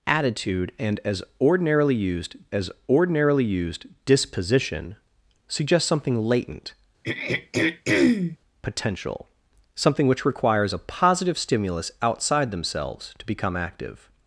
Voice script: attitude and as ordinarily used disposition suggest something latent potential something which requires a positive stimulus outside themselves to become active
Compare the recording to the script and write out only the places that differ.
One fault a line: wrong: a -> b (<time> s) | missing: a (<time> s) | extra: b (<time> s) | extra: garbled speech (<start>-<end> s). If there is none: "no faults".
extra: as ordinarily used (2.5 s)